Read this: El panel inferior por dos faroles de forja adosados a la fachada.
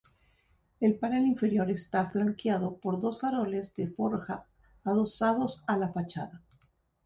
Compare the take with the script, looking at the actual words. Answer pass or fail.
fail